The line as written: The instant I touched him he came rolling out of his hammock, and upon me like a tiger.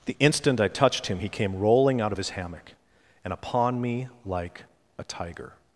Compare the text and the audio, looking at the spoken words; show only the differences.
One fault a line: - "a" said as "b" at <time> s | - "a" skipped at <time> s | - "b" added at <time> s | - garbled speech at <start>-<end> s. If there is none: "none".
none